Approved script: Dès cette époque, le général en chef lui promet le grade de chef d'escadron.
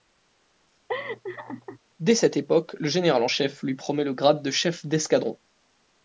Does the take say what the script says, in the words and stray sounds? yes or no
no